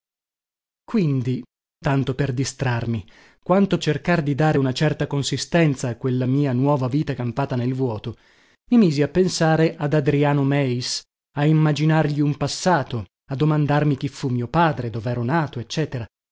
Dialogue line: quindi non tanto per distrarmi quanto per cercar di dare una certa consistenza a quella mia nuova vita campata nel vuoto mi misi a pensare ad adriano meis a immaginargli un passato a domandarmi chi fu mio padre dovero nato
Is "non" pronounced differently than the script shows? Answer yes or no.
yes